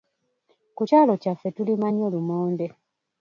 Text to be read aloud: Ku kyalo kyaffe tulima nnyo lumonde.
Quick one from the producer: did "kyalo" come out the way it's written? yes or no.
yes